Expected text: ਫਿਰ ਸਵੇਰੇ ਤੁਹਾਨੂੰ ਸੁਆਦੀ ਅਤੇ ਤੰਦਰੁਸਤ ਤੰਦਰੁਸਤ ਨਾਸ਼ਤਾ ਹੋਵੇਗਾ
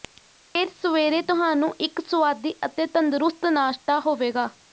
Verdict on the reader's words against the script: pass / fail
fail